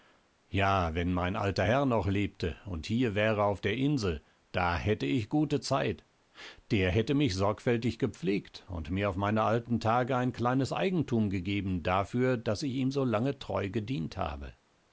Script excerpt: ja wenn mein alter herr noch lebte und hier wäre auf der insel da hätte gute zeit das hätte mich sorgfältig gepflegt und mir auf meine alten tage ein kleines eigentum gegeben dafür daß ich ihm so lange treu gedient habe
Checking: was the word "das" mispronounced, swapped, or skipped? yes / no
yes